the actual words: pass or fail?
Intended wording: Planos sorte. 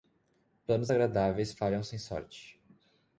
fail